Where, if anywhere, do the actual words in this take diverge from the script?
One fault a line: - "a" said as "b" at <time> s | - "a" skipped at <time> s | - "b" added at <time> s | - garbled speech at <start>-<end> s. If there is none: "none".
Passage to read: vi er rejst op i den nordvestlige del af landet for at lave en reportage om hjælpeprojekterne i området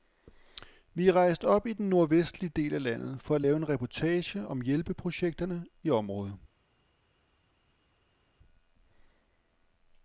none